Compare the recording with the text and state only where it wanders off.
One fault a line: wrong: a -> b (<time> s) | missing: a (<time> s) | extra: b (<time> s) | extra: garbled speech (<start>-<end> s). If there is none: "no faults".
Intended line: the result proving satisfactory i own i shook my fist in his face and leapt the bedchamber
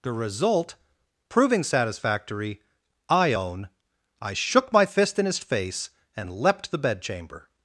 no faults